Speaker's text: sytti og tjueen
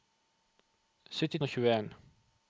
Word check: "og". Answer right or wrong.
right